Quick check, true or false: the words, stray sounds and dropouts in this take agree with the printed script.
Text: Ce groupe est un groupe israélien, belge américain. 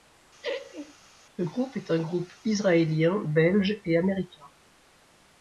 false